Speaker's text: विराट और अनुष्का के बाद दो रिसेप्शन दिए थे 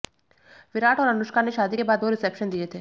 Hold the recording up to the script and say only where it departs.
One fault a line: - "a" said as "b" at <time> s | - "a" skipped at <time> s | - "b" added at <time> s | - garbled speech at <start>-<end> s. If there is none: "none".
- "ने शादी" added at 1.4 s